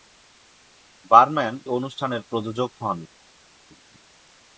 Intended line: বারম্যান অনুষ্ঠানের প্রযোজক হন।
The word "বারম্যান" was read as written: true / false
true